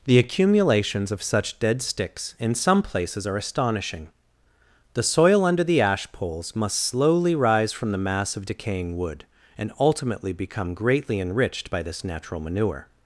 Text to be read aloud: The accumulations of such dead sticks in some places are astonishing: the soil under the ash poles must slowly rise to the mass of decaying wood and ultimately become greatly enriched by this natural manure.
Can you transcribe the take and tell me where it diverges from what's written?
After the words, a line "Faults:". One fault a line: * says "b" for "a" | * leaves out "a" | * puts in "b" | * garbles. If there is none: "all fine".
The accumulations of such dead sticks in some places are astonishing: the soil under the ash poles must slowly rise from the mass of decaying wood and ultimately become greatly enriched by this natural manure.
Faults:
* says "from" for "to"